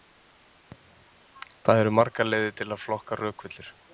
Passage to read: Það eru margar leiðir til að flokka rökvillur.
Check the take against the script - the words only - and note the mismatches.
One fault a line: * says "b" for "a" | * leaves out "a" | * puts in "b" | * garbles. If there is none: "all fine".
all fine